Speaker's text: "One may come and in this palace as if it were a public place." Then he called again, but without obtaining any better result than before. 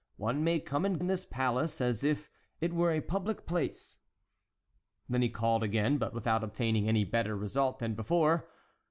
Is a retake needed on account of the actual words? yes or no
no